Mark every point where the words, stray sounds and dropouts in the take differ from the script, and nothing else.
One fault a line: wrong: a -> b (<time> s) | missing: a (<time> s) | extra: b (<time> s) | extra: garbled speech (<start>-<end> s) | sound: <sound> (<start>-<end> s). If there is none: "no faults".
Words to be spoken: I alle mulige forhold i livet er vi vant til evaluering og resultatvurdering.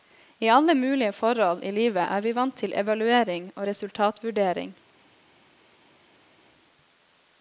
no faults